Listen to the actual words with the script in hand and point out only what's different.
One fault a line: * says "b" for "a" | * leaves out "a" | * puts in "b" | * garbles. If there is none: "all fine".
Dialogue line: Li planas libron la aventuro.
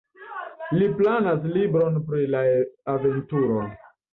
* puts in "pri"